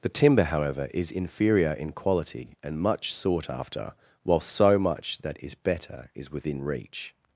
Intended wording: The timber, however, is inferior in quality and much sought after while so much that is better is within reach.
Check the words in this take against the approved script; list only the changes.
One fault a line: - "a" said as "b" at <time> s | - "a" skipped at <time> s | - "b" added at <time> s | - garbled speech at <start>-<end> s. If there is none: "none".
none